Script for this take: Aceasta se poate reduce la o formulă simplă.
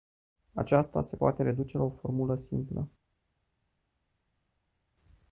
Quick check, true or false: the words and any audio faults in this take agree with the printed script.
true